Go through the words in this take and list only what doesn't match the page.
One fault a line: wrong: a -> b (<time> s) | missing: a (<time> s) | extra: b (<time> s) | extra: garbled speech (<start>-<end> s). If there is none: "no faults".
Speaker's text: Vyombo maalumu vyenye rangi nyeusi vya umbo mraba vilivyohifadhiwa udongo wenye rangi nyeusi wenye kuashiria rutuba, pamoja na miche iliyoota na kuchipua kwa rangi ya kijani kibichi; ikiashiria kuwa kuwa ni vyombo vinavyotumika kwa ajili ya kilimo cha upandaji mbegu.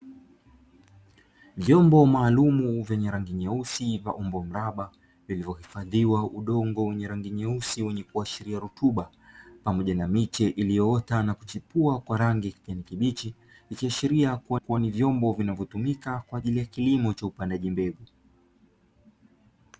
no faults